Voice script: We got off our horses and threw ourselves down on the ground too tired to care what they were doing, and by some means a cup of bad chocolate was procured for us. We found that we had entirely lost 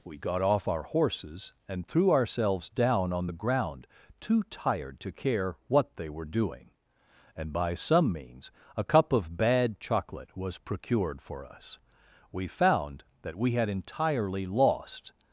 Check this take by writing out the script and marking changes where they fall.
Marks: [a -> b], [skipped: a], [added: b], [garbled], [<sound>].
We got off our horses and threw ourselves down on the ground too tired to care what they were doing, and by some means a cup of bad chocolate was procured for us. We found that we had entirely lost